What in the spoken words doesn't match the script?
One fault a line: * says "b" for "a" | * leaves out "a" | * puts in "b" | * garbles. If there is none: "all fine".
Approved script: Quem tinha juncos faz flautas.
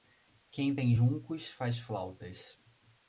* says "tem" for "tinha"